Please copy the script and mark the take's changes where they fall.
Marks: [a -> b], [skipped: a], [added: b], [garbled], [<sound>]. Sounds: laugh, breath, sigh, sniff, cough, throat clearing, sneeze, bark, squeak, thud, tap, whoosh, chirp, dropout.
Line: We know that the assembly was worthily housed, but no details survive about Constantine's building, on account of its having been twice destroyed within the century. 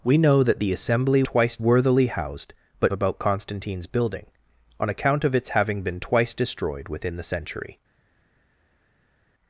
We know that the assembly [was -> twice] worthily housed, but [skipped: no details survive] about Constantine's building, on account of its having been twice destroyed within the century.